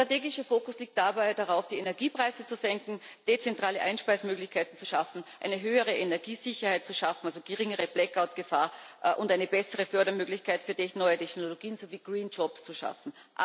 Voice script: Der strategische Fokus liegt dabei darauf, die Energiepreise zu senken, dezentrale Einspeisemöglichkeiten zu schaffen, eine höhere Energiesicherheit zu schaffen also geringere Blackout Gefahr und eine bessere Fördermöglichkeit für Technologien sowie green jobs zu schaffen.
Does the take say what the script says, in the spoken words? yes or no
no